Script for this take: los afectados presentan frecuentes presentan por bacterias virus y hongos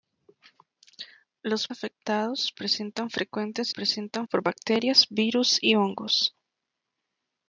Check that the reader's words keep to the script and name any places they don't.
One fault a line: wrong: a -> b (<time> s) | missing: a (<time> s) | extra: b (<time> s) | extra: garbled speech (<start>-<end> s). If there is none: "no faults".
no faults